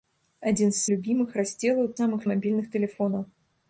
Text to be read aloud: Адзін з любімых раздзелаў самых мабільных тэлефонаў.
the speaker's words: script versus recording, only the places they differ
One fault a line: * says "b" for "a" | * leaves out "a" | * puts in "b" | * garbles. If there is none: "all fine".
all fine